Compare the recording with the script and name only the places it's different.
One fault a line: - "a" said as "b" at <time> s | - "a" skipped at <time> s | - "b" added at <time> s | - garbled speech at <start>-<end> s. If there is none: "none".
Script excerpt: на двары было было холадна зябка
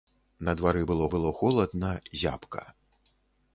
none